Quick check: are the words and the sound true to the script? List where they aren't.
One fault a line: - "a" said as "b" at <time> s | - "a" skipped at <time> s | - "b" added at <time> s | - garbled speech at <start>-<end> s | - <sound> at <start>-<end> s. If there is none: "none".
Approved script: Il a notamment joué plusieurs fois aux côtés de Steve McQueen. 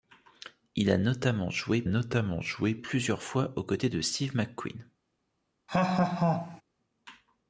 - "notamment joué" added at 1.8 s
- laugh at 5.7-6.6 s